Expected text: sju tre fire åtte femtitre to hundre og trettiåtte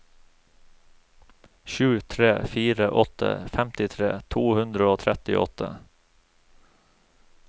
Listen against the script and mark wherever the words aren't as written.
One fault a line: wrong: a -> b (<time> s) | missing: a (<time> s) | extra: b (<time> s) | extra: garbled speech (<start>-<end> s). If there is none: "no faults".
no faults